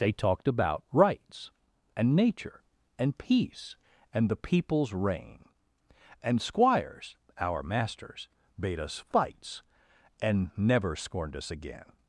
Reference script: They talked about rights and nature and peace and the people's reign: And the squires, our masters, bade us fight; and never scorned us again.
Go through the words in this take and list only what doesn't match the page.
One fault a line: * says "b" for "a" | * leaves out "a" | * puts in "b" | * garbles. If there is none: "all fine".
* leaves out "the"
* says "fights" for "fight"